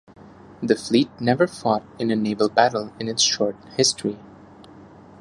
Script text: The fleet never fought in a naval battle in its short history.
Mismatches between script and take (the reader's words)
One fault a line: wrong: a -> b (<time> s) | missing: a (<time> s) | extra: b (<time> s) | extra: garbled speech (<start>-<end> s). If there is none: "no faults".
no faults